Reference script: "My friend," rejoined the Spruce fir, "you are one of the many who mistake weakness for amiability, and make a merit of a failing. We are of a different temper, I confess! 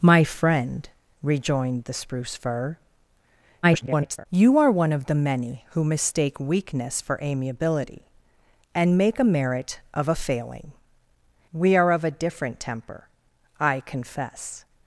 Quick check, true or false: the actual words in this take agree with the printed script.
false